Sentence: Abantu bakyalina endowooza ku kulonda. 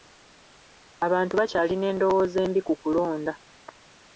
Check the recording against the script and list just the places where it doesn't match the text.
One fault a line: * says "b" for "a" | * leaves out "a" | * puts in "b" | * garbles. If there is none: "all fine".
* puts in "embi"